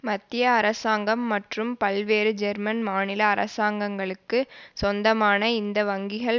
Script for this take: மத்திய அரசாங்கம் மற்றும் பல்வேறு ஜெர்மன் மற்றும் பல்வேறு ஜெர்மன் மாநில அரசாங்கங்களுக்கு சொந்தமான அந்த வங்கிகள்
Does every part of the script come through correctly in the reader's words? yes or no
no